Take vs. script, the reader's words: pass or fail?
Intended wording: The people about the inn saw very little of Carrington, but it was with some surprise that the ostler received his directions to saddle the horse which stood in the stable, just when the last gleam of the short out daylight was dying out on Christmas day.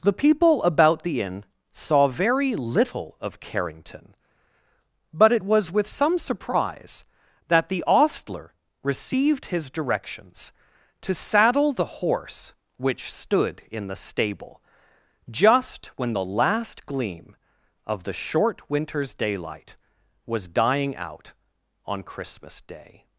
fail